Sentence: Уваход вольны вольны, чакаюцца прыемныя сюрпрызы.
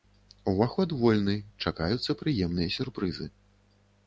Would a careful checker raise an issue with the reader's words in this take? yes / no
yes